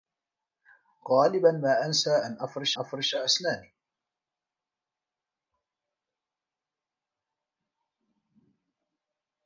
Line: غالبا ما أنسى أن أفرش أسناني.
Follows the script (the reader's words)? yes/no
no